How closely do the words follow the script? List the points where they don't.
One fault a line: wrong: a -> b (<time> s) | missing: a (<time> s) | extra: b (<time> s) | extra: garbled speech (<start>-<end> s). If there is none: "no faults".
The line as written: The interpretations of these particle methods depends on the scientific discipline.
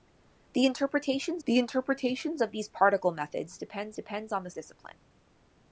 extra: the interpretations (1.4 s)
extra: depends (3.9 s)
missing: scientific (4.5 s)